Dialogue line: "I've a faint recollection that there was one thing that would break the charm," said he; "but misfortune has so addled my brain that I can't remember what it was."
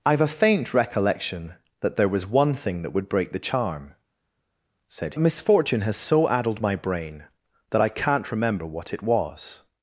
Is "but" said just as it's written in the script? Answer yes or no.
no